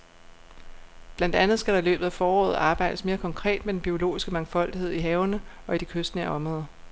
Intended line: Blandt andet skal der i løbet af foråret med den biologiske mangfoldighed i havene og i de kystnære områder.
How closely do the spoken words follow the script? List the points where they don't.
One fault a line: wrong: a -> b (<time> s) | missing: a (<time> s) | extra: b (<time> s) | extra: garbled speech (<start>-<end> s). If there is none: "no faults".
extra: arbejdes mere konkret (2.5 s)